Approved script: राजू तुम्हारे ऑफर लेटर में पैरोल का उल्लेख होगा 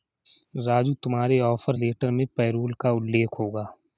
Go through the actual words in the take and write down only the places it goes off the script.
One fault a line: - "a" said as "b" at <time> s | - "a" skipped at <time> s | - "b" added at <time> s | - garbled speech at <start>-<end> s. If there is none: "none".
none